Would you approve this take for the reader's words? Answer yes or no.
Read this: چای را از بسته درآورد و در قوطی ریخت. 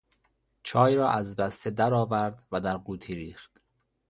yes